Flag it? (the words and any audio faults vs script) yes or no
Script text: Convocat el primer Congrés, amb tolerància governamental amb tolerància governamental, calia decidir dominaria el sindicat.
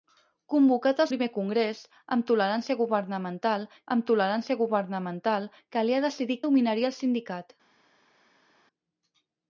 no